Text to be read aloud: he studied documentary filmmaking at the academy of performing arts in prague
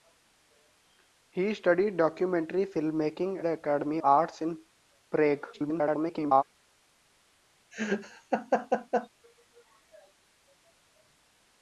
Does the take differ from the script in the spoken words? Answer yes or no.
yes